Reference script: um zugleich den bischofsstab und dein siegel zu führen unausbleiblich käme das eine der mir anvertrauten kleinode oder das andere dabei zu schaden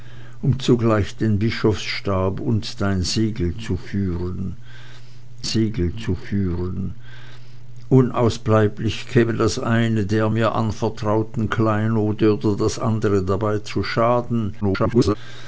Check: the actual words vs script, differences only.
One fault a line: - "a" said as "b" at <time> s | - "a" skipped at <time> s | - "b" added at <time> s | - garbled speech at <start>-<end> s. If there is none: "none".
- "siegel zu führen" added at 5.4 s
- garbled speech at 14.6-15.2 s